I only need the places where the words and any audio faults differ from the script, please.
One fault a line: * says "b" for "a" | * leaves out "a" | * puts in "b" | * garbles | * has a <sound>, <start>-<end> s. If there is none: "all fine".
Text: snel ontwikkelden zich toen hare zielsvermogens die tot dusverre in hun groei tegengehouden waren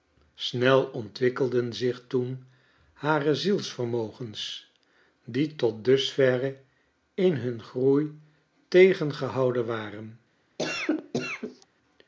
* has a cough, 10.6-11.7 s